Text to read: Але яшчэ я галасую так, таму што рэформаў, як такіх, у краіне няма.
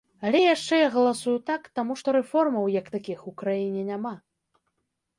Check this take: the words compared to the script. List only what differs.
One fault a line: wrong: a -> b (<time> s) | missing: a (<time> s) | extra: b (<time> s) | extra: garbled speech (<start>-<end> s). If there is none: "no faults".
no faults